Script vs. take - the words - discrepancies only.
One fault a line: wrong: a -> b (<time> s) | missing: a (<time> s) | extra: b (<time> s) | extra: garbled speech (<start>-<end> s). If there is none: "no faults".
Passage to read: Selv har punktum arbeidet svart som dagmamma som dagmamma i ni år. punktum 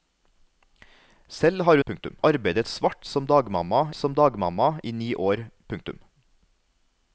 no faults